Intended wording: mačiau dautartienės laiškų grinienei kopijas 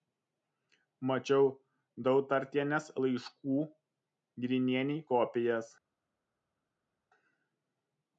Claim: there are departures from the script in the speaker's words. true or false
false